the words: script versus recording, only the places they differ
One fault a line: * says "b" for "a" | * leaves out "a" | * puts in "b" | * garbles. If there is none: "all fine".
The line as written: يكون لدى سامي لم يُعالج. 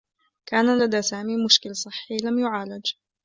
* says "كان" for "يكون"
* puts in "مشكل صحّي"